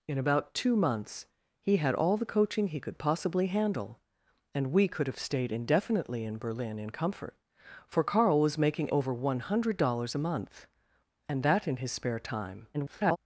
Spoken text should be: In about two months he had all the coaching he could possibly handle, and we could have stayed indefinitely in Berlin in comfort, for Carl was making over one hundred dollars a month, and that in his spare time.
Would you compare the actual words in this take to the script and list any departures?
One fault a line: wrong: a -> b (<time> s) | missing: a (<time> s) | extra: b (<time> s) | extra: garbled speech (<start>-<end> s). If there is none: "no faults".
extra: garbled speech (12.7-13.2 s)